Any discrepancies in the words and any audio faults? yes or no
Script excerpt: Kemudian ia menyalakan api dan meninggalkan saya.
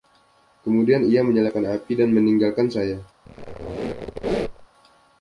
yes